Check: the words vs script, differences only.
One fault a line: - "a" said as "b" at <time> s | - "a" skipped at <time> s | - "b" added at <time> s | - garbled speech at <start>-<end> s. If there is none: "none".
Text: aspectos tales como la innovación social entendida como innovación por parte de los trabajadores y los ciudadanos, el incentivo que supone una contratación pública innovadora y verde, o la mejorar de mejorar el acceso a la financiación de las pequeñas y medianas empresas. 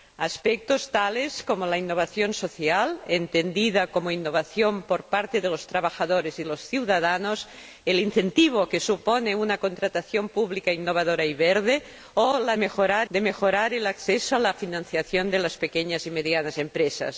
none